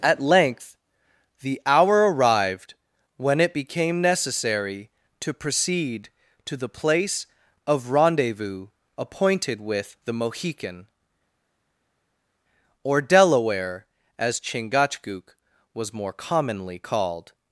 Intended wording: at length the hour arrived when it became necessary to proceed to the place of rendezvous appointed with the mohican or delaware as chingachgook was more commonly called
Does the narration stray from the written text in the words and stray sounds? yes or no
no